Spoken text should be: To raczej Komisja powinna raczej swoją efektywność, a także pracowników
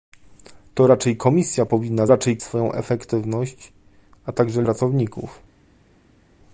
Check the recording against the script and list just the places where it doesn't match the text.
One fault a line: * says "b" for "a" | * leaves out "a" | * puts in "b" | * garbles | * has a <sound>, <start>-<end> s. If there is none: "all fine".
all fine